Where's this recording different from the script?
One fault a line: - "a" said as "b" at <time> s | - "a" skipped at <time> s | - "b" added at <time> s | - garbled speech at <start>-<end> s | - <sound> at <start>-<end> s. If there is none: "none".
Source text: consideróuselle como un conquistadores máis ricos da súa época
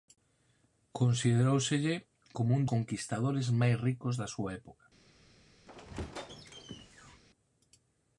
- squeak at 5.7-7.2 s